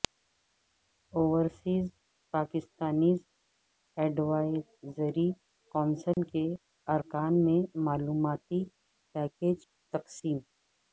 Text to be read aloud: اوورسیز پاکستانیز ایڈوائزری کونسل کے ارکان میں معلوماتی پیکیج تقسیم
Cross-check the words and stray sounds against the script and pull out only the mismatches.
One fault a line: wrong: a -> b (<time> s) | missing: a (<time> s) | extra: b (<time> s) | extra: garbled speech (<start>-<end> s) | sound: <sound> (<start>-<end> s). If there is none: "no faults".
sound: dropout (6.1-6.2 s)